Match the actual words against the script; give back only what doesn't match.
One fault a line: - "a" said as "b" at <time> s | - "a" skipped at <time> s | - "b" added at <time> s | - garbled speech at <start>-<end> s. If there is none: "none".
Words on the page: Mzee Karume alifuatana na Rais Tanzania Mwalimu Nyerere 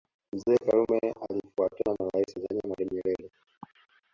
none